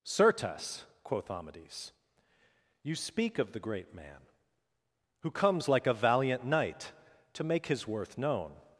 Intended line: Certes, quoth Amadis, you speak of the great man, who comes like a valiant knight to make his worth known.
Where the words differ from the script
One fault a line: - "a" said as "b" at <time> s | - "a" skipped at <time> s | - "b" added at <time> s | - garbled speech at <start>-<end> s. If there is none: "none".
none